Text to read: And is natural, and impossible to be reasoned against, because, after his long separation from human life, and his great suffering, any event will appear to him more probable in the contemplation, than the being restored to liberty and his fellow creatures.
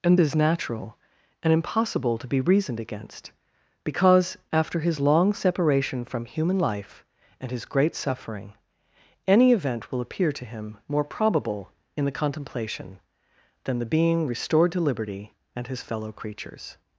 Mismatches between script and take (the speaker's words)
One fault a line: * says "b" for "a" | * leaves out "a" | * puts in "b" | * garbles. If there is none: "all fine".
all fine